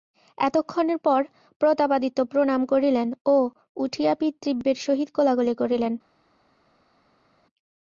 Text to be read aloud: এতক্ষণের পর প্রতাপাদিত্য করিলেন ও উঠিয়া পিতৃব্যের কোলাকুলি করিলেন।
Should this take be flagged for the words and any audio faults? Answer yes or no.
yes